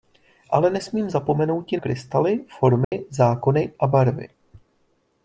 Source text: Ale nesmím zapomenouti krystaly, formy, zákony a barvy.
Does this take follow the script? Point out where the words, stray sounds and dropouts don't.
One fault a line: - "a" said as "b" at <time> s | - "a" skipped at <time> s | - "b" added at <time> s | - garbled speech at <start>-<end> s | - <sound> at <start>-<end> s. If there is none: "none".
- dropout at 2.8-2.9 s